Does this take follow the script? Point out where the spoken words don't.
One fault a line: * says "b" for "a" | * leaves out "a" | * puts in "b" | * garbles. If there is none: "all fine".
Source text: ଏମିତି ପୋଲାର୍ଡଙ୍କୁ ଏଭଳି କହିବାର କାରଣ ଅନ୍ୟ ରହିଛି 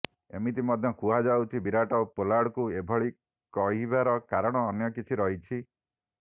* puts in "ମଧ୍ୟ କୁହାଯାଉଛି ବିରାଟ"
* puts in "କିଛି"